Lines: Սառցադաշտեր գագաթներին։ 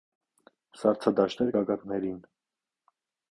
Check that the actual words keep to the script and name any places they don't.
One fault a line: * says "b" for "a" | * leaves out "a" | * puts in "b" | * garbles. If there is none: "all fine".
all fine